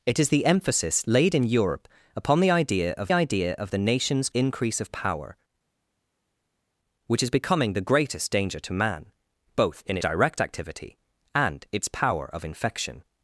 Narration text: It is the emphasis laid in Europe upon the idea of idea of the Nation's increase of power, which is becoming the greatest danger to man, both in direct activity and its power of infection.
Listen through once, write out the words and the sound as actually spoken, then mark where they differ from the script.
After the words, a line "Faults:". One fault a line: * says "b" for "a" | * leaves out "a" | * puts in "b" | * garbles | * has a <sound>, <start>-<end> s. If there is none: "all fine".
It is the emphasis laid in Europe upon the idea of idea of the Nation's increase of power, which is becoming the greatest danger to man, both in direct activity and its power of infection.
Faults:
all fine